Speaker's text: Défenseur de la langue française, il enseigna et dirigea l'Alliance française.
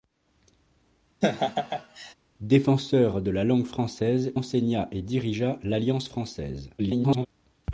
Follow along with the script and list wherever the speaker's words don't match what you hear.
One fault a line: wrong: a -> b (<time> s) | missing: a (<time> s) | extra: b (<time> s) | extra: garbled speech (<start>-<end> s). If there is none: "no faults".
missing: il (4.3 s)
extra: garbled speech (6.8-7.3 s)